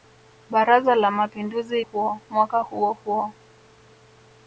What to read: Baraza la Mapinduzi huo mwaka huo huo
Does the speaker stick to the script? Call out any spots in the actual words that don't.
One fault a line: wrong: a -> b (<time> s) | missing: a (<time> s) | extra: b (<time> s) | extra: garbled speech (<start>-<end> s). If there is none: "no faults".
no faults